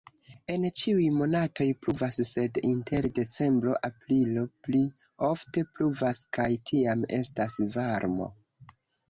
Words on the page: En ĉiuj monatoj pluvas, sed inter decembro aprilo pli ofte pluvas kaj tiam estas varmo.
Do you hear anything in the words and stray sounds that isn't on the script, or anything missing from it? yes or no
no